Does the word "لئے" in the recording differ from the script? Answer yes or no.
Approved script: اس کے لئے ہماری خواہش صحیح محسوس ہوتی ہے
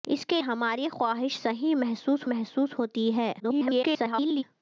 yes